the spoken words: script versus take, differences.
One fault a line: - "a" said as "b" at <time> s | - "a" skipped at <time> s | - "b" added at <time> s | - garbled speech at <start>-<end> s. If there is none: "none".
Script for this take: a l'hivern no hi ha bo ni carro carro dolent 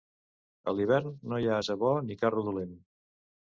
- "ase" added at 1.6 s
- "carro" skipped at 2.5 s